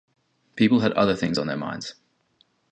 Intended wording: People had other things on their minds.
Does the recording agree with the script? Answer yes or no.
yes